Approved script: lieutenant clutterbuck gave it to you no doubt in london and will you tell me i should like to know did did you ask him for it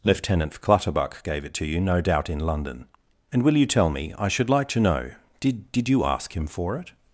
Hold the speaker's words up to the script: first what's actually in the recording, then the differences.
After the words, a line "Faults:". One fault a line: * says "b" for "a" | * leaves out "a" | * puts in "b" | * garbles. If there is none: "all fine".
lieutenant clutterbuck gave it to you no doubt in london and will you tell me i should like to know did did you ask him for it
Faults:
all fine